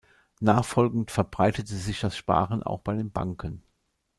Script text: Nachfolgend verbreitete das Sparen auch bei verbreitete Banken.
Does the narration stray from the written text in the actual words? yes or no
yes